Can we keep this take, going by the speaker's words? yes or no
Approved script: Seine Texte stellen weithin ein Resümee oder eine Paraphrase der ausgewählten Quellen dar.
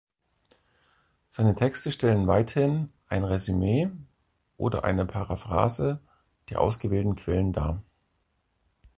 yes